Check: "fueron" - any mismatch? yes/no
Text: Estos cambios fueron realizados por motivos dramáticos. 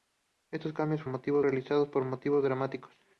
yes